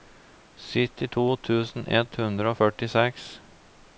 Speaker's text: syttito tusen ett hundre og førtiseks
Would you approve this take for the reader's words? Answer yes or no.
yes